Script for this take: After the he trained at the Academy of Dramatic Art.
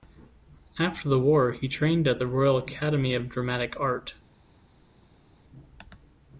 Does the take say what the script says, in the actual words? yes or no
no